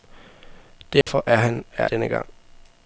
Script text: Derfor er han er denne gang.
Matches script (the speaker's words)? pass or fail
pass